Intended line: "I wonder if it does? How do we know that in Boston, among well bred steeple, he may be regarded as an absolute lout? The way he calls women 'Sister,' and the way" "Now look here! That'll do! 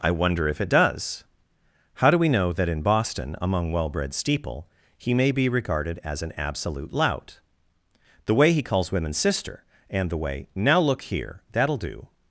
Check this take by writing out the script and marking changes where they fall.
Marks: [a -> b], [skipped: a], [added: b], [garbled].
"I wonder if it does? How do we know that in Boston, among well bred steeple, he may be regarded as an absolute lout? The way he calls women 'Sister,' and the way" "Now look here! That'll do!